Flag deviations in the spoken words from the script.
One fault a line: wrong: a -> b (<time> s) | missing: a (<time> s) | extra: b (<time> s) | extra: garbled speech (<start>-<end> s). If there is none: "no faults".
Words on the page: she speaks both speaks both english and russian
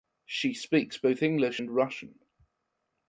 missing: speaks both (1.2 s)